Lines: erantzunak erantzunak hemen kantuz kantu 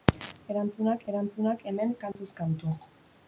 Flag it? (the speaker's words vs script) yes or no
no